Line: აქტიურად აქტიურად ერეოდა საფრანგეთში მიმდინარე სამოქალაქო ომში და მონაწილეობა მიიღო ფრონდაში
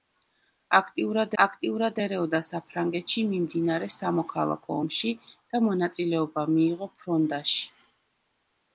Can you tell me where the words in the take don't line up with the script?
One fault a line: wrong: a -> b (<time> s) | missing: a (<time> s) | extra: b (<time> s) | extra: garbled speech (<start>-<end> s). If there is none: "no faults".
no faults